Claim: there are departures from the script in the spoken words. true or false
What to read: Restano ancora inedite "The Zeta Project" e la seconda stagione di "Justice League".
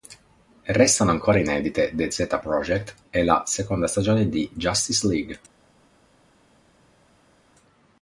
false